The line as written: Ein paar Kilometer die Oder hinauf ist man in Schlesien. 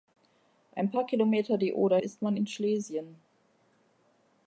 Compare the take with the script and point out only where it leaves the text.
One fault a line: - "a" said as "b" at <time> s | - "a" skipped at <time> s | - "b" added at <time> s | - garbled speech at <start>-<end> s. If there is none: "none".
- "hinauf" skipped at 2.0 s